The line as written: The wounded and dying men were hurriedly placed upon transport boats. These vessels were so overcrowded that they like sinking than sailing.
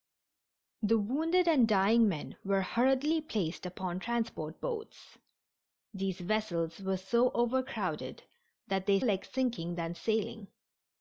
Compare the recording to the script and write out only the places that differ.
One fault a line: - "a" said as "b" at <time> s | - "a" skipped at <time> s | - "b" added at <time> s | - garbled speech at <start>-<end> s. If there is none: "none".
none